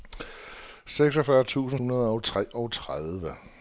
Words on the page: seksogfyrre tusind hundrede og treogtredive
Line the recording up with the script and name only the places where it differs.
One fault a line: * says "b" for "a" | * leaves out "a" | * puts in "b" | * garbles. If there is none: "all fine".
all fine